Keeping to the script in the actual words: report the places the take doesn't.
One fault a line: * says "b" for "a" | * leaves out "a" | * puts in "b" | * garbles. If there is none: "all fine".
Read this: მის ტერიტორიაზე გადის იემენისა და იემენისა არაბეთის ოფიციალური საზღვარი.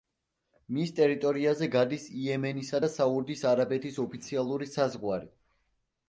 * says "საუდის" for "იემენისა"